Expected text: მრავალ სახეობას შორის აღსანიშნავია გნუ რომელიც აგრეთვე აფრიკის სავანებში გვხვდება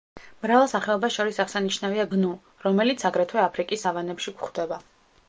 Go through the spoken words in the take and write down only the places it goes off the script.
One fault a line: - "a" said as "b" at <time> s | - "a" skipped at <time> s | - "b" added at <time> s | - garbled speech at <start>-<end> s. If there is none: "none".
none